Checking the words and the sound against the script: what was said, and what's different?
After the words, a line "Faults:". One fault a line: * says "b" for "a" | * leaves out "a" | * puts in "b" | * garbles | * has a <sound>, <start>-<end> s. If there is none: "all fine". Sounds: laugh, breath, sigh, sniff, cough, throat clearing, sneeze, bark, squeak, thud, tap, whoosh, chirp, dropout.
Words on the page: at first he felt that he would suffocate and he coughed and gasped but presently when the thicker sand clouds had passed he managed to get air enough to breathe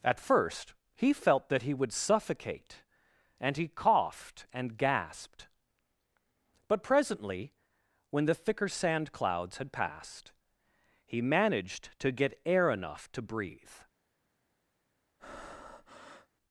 at first he felt that he would suffocate and he coughed and gasped but presently when the thicker sand clouds had passed he managed to get air enough to breathe
Faults:
* has a breath, 15.2-16.3 s